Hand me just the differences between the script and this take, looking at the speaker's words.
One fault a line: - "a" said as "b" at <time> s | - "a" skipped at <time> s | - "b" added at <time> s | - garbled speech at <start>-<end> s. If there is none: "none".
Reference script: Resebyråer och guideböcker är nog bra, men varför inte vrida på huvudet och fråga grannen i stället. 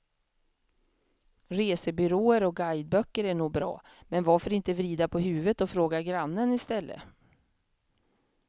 none